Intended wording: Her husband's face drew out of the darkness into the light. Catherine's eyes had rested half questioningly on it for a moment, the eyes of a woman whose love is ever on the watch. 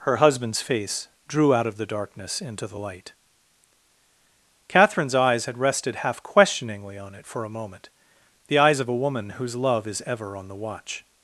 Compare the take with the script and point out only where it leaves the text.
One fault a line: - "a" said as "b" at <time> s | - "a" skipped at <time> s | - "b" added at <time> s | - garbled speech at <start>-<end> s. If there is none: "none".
none